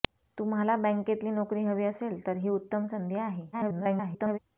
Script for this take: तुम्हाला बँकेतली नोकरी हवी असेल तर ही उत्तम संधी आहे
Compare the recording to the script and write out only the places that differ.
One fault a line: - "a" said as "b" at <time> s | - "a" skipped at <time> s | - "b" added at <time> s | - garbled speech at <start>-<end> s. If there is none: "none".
- garbled speech at 3.5-4.4 s